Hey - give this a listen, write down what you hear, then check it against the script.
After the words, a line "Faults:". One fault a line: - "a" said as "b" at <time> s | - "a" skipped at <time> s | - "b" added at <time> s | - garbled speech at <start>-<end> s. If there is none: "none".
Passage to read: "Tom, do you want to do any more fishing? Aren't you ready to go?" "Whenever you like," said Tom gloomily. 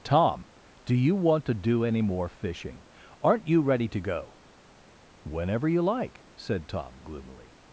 "Tom, do you want to do any more fishing? Aren't you ready to go?" "Whenever you like," said Tom gloomily.
Faults:
none